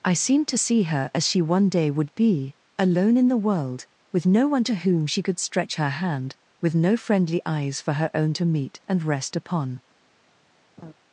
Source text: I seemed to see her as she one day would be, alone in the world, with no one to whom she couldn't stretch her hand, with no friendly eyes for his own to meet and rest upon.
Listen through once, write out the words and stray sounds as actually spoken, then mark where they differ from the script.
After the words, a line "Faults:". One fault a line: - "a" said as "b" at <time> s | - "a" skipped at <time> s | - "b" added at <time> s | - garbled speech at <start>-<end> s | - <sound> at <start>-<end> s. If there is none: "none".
I seemed to see her as she one day would be, alone in the world, with no one to whom she could stretch her hand, with no friendly eyes for her own to meet and rest upon.
Faults:
- "couldn't" said as "could" at 5.2 s
- "his" said as "her" at 7.9 s
- laugh at 10.8-10.9 s